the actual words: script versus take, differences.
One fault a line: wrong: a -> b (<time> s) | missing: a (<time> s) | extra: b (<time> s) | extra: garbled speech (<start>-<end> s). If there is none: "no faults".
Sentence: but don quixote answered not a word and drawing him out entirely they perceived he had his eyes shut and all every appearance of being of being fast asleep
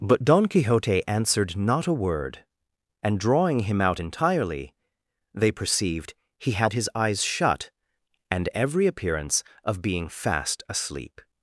missing: all (8.5 s)
missing: of being (10.1 s)